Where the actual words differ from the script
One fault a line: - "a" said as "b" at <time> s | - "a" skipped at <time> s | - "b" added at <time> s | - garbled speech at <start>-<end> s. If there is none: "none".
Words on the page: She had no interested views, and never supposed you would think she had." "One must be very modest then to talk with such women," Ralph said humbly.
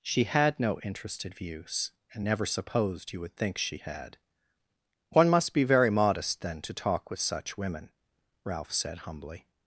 none